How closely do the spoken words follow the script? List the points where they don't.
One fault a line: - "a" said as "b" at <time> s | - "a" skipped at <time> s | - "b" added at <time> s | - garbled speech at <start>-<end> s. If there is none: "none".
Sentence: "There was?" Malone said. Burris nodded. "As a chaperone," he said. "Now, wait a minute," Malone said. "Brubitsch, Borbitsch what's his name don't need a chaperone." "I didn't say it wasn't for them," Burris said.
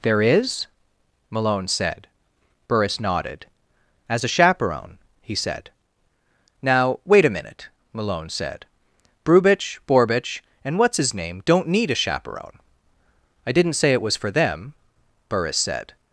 - "was" said as "is" at 0.2 s
- "and" added at 10.6 s
- "wasn't" said as "was" at 14.0 s